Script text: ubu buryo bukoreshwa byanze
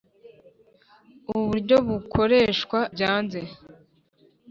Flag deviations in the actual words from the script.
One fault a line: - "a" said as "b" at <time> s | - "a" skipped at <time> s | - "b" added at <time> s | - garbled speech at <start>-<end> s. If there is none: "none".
none